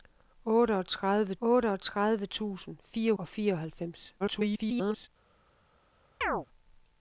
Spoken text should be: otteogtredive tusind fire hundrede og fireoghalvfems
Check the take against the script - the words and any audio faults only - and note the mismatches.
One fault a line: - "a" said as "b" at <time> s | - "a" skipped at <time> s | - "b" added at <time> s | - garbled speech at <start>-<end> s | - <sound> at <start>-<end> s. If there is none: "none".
- "otteogtredive" added at 1.4 s
- "hundrede" skipped at 3.1 s
- garbled speech at 4.2-5.1 s
- chirp at 6.2-6.5 s